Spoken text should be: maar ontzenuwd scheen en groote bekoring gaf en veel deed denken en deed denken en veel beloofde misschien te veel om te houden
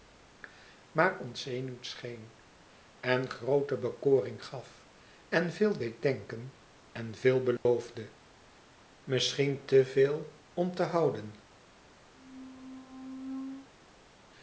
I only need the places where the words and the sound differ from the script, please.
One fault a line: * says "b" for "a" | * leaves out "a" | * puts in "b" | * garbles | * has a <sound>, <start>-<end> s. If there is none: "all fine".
* leaves out "deed denken en"
* has a dropout, 7.6-7.7 s
* has a squeak, 12.1-13.7 s